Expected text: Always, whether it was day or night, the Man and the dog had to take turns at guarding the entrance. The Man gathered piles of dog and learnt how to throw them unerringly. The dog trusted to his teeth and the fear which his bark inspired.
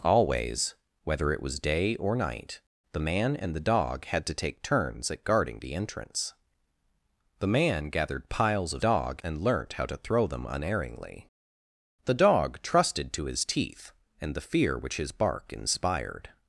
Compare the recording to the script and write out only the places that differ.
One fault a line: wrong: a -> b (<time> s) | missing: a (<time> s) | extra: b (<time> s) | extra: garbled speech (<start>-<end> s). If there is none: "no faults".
no faults